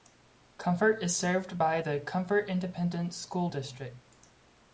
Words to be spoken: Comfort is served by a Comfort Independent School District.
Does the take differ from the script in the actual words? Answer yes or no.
yes